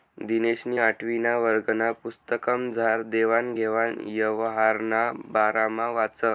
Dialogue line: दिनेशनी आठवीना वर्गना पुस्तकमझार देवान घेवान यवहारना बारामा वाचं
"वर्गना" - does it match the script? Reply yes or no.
yes